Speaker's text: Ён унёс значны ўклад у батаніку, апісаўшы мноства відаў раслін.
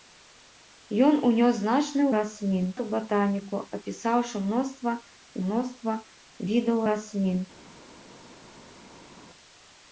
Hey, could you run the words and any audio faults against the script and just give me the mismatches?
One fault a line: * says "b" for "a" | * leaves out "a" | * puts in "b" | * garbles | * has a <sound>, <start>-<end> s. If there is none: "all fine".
* says "раслін" for "ўклад"
* puts in "мноства"